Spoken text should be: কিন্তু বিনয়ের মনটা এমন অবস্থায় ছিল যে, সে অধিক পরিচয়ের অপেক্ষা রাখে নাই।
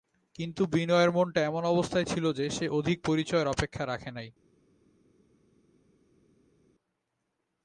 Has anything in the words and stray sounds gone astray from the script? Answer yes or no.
no